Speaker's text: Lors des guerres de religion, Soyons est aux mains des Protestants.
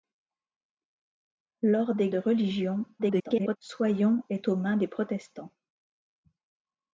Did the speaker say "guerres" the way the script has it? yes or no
no